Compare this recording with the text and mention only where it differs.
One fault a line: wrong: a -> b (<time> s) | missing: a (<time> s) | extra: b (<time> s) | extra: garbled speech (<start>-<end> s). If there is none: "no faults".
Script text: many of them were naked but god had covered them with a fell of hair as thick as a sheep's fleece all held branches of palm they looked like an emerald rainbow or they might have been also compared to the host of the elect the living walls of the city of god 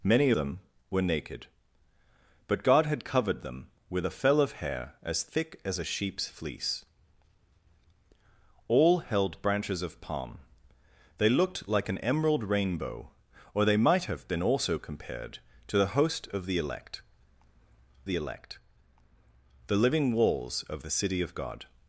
missing: of (0.3 s)
extra: elect the (18.1 s)